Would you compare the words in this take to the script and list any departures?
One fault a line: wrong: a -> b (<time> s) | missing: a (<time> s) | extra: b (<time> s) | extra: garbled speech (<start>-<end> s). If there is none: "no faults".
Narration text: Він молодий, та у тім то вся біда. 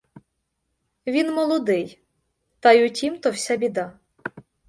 extra: й (2.7 s)